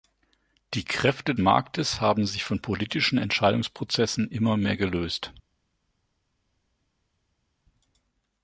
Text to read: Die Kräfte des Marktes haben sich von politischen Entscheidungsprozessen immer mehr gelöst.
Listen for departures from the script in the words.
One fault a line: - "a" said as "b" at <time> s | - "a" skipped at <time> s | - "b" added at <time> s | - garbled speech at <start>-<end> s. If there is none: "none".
- "des" skipped at 1.4 s